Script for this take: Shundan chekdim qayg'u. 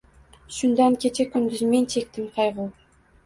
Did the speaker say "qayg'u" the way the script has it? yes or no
yes